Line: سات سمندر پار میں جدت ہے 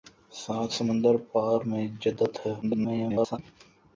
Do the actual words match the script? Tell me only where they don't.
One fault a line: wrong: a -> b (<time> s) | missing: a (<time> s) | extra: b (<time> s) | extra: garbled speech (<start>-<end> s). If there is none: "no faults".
extra: garbled speech (2.6-3.4 s)